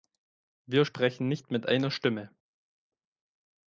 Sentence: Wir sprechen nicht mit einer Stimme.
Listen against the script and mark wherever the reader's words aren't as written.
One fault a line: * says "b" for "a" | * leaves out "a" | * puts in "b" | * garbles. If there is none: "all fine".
all fine